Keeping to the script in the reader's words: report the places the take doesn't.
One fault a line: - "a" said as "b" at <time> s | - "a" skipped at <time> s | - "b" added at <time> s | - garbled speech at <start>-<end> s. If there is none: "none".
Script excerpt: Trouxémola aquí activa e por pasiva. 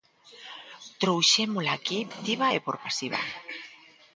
none